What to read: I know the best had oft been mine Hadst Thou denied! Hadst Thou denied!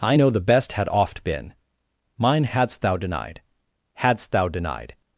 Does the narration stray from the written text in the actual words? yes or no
no